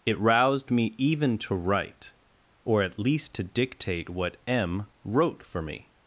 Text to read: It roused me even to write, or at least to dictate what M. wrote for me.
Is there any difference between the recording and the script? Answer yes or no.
no